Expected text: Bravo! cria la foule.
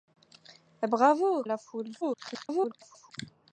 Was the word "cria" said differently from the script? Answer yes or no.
yes